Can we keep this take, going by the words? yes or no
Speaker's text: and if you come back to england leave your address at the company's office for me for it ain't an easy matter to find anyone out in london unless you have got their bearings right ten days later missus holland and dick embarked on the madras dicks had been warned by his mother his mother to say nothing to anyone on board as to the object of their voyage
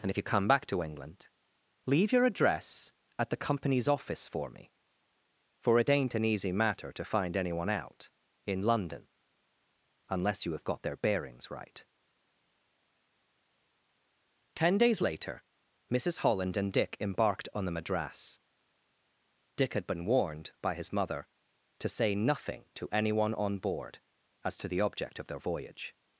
no